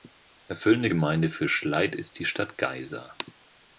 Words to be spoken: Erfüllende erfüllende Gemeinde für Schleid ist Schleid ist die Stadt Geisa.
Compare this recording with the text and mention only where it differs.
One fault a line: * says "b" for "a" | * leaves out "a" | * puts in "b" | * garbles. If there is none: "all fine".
* leaves out "erfüllende"
* leaves out "Schleid ist"